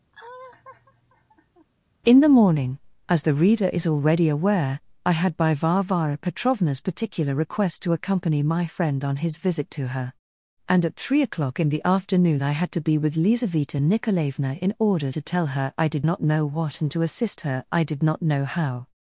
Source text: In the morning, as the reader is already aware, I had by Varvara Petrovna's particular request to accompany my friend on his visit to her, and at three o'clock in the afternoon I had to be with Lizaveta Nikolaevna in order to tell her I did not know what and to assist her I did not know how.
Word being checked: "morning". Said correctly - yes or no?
yes